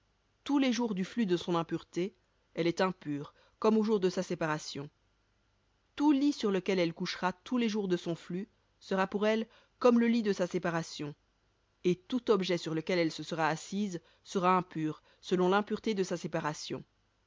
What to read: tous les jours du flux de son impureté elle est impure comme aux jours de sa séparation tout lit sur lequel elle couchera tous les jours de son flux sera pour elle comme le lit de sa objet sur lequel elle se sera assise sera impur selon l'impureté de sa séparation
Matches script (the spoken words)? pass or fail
fail